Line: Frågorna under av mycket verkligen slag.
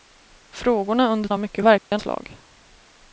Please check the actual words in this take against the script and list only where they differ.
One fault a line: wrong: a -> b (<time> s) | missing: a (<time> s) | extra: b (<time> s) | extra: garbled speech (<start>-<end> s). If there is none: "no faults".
no faults